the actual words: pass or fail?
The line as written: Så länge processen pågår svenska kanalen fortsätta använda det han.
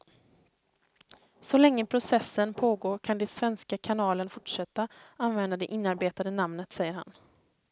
fail